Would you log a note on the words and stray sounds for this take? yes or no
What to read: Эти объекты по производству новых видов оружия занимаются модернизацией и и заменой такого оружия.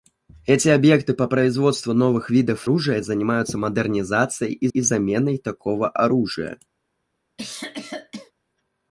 yes